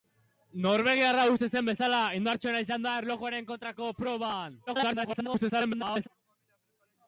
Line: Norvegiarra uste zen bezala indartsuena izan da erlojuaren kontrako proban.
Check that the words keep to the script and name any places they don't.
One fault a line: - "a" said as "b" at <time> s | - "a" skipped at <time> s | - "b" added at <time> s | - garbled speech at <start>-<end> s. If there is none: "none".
- garbled speech at 4.7-6.1 s